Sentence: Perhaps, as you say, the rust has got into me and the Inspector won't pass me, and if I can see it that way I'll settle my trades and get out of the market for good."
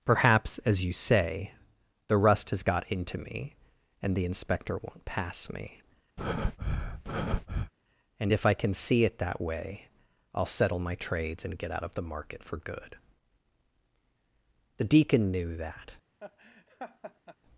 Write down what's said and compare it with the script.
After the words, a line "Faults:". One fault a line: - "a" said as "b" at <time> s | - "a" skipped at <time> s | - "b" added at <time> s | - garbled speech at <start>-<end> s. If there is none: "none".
Perhaps, as you say, the rust has got into me and the Inspector won't pass me, and if I can see it that way I'll settle my trades and get out of the market for good." The Deacon knew that
Faults:
- "The Deacon knew that" added at 14.8 s